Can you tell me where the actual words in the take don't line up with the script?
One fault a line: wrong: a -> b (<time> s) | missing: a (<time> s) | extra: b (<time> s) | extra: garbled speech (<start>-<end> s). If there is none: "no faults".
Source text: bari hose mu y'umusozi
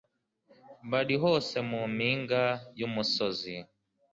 extra: mpinga (1.9 s)